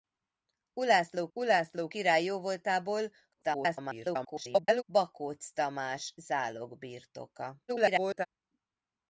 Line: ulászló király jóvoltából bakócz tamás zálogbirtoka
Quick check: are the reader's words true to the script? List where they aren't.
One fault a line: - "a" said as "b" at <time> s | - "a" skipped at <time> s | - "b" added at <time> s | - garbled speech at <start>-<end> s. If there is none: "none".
- "ulászló" added at 1.3 s
- garbled speech at 3.3-4.8 s
- garbled speech at 7.7-8.3 s